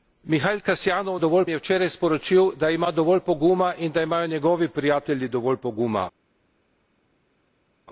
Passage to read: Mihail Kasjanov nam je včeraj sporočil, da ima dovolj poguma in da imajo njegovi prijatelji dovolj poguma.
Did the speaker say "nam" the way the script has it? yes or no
no